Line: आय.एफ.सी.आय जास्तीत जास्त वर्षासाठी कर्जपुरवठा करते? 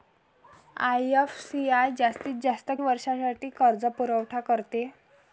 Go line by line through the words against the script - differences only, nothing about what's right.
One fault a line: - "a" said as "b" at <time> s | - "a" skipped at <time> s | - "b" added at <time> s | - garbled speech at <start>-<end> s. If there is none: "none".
none